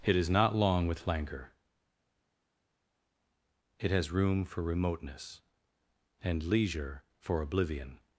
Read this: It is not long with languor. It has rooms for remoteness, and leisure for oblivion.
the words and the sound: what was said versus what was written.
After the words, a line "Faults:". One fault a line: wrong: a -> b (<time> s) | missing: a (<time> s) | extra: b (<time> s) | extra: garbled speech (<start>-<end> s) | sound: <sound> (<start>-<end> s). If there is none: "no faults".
It is not long with languor. It has room for remoteness, and leisure for oblivion.
Faults:
wrong: rooms -> room (4.1 s)